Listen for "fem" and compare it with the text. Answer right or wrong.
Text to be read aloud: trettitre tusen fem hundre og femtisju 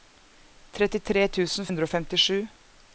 wrong